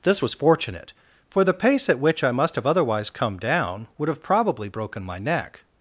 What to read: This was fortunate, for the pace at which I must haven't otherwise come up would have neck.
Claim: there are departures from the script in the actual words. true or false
true